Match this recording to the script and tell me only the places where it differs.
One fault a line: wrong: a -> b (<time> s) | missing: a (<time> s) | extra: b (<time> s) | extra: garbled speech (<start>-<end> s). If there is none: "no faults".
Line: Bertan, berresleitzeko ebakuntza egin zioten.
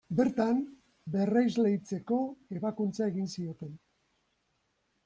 no faults